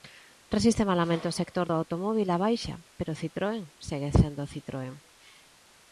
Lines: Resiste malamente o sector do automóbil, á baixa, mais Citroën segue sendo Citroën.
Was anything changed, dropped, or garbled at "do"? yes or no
no